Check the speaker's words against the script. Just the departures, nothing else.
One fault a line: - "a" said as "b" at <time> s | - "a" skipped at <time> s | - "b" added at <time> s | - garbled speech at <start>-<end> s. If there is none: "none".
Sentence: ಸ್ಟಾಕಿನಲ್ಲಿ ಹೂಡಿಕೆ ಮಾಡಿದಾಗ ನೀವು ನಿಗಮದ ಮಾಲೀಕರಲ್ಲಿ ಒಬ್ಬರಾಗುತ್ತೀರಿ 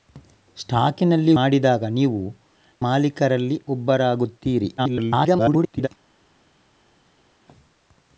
- "ಹೂಡಿಕೆ" skipped at 1.3 s
- "ನಿಗಮದ" skipped at 2.2 s
- garbled speech at 4.8-5.9 s